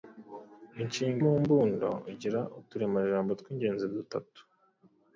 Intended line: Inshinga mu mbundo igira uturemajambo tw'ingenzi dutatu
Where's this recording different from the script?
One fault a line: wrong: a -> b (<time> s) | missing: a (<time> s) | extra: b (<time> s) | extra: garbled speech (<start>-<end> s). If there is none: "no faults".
no faults